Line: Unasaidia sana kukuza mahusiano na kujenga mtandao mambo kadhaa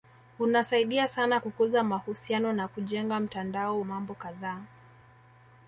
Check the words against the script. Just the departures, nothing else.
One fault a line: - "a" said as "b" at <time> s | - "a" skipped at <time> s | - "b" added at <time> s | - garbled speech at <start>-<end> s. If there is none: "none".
none